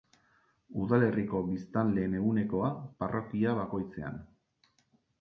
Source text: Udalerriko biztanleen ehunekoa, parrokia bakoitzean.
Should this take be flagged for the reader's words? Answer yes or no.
no